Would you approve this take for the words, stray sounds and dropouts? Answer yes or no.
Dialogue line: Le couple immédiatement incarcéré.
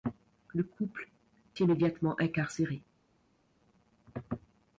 yes